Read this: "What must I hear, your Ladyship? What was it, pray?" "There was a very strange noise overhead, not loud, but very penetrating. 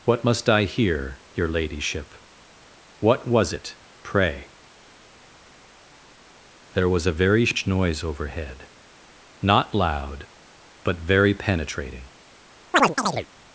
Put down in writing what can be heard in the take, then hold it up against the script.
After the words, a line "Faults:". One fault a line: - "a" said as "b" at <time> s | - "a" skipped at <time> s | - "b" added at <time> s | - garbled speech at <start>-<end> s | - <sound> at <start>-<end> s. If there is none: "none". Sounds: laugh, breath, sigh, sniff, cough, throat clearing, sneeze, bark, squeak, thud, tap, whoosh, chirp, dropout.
"What must I hear, your Ladyship? What was it, pray?" "There was a very sh noise overhead, not loud, but very penetrating.
Faults:
- "strange" said as "sh" at 7.4 s
- chirp at 12.7-13.3 s